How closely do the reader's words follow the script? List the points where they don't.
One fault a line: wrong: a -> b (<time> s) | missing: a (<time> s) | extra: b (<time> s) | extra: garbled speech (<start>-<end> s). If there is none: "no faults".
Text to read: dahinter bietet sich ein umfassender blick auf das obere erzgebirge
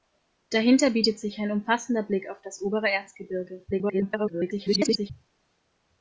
extra: garbled speech (3.7-5.1 s)